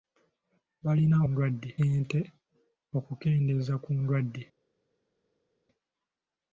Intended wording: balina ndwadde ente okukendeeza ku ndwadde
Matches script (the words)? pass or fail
pass